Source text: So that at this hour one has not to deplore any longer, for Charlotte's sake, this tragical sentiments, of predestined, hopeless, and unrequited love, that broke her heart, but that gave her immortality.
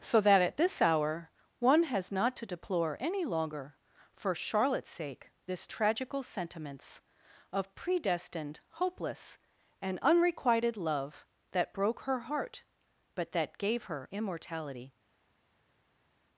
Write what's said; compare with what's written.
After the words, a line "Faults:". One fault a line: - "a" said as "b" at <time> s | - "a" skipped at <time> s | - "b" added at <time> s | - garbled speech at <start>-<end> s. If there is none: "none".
So that at this hour one has not to deplore any longer, for Charlotte's sake, this tragical sentiments, of predestined, hopeless, and unrequited love, that broke her heart, but that gave her immortality.
Faults:
none